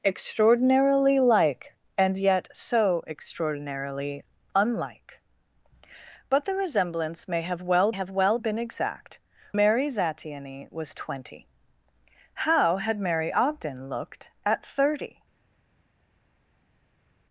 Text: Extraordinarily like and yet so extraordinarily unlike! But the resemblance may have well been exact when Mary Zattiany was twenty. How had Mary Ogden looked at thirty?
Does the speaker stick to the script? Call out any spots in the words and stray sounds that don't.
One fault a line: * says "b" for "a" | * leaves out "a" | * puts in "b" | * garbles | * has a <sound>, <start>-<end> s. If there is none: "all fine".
* puts in "have well"
* leaves out "when"